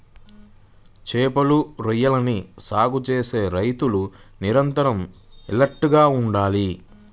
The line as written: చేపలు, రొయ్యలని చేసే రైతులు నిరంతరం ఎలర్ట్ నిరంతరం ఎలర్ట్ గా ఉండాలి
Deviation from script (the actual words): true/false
true